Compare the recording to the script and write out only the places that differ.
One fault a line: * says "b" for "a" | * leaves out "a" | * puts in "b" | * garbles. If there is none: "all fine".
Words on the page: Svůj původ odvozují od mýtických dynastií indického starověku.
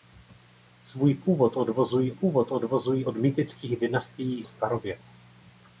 * puts in "původ odvozují"
* leaves out "indického"